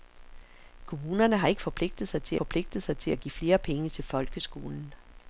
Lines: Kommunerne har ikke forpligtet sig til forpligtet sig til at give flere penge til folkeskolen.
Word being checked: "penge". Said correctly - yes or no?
yes